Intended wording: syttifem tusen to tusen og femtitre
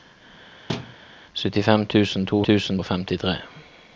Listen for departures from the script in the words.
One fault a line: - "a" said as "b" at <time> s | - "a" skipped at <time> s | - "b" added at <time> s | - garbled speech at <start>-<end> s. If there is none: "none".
none